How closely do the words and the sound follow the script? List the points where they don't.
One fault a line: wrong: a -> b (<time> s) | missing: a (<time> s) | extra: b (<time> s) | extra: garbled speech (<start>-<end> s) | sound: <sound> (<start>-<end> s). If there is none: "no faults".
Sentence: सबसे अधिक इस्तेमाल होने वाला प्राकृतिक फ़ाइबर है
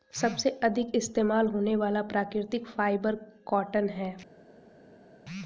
extra: कॉटन (3.5 s)